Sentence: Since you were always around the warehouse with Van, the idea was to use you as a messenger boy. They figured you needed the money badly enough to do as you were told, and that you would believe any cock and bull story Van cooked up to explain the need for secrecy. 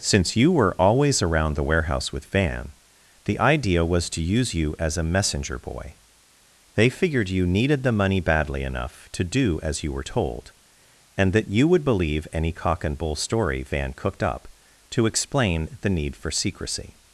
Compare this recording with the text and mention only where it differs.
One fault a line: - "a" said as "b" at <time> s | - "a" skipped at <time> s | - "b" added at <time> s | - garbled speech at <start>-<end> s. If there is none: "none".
none